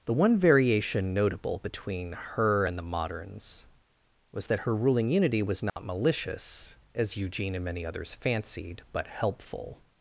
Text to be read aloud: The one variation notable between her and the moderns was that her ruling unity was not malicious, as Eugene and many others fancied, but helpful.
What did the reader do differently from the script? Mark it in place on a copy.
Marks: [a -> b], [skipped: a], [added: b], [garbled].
The one variation notable between her and the moderns was that her ruling unity was not malicious, as Eugene and many others fancied, but helpful.